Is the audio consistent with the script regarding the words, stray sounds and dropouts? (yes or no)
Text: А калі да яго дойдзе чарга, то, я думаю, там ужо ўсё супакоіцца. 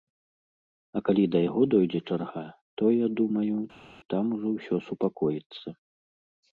yes